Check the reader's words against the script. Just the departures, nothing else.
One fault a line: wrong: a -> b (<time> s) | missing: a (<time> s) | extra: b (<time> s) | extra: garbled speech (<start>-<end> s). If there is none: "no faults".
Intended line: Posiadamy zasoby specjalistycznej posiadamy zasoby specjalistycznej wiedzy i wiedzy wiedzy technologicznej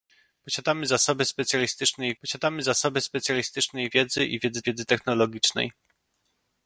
no faults